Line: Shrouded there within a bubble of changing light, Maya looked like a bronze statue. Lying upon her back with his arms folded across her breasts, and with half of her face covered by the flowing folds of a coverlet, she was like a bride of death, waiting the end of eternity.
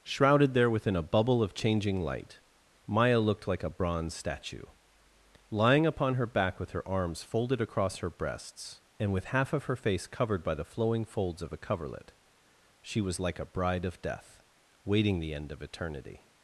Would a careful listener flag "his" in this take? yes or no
yes